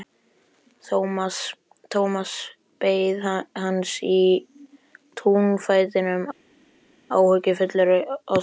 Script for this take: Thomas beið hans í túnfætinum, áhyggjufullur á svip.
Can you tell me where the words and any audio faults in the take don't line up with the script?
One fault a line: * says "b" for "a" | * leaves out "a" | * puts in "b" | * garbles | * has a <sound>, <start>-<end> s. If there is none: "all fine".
all fine